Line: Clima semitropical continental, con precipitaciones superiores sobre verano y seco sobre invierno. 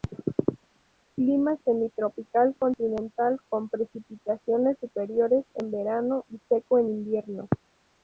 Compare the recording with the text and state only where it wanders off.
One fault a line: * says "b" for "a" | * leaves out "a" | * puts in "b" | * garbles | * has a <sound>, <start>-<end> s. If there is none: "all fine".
* says "en" for "sobre"
* says "en" for "sobre"